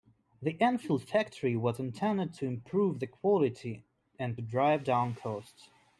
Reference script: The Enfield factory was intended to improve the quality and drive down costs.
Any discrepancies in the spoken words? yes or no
no